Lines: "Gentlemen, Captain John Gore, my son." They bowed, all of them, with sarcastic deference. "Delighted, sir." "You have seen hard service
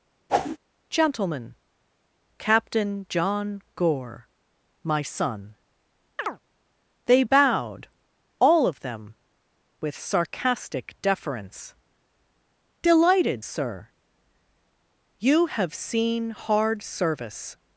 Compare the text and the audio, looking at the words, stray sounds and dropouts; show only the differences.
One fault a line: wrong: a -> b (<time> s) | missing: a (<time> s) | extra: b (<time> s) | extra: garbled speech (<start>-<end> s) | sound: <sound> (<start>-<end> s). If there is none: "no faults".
sound: whoosh (0.3-0.6 s)
sound: chirp (6.2-6.4 s)